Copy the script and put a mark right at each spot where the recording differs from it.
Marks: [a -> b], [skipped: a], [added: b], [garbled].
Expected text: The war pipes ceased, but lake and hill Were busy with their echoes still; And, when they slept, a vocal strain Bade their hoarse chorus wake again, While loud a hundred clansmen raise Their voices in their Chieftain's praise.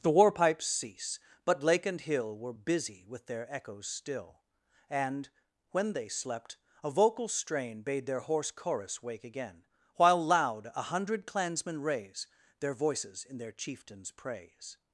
The war pipes [ceased, -> cease] but lake and hill Were busy with their echoes still; And, when they slept, a vocal strain Bade their hoarse chorus wake again, While loud a hundred clansmen raise Their voices in their Chieftain's praise.